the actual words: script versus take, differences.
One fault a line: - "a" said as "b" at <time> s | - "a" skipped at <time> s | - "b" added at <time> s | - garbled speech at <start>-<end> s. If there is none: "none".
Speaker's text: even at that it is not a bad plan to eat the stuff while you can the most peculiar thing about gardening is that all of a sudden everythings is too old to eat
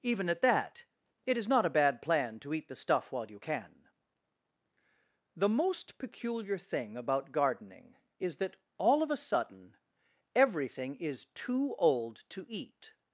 - "everythings" said as "everything" at 10.4 s